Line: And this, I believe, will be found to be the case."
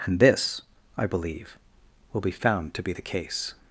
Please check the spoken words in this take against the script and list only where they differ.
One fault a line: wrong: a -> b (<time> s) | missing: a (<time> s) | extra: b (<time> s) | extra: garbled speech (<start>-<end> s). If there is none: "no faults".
no faults